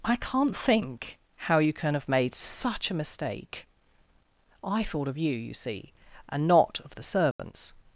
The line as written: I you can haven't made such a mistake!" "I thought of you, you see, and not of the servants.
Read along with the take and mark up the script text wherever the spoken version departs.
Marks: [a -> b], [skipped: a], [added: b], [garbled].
I [added: can't think how] you can [haven't -> have] made such a mistake!" "I thought of you, you see, and not of the servants.